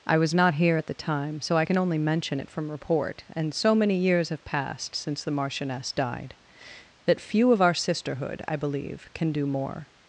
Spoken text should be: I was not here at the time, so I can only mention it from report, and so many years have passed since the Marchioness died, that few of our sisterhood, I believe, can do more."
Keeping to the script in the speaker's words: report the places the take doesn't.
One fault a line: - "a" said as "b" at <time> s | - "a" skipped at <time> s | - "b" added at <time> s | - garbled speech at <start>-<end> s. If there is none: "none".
none